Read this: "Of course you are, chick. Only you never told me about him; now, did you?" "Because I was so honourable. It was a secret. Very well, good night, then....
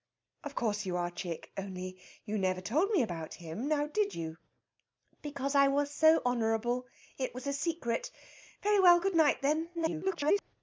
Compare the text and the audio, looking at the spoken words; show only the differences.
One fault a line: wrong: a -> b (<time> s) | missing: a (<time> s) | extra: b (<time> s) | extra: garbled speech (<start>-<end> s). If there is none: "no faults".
extra: garbled speech (9.7-10.4 s)